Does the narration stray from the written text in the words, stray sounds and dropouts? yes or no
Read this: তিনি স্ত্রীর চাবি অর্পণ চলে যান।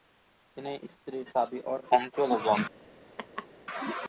yes